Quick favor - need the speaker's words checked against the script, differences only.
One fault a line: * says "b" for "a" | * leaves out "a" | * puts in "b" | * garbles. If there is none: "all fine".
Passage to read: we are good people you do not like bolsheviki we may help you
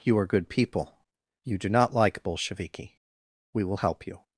* says "you" for "we"
* says "will" for "may"